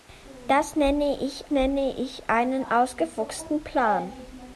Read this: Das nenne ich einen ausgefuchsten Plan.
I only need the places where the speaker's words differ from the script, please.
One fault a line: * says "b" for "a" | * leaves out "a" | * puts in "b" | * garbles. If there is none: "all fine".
* puts in "nenne ich"